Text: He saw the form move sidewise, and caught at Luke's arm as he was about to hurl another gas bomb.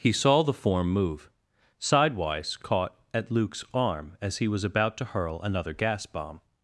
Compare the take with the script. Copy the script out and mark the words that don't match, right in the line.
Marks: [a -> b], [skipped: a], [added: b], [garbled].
He saw the form move sidewise, [skipped: and] caught at Luke's arm as he was about to hurl another gas bomb.